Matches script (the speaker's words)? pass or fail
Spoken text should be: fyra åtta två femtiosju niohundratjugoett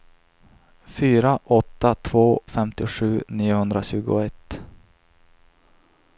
pass